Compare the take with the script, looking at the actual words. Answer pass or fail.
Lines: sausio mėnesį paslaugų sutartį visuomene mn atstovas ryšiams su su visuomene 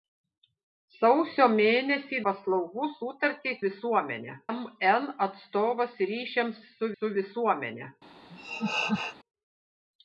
pass